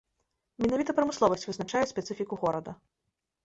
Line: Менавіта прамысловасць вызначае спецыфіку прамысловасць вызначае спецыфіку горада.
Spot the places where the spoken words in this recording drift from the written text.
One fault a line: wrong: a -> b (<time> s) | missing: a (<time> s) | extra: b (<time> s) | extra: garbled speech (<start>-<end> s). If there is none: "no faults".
missing: прамысловасць вызначае спецыфіку (2.3 s)